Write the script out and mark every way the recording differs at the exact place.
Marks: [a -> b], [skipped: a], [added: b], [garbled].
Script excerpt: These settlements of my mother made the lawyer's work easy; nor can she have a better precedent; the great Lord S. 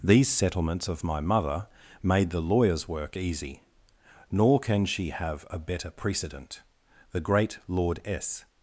These settlements of my mother made the lawyer's work easy; nor can she have a better precedent; the great Lord S.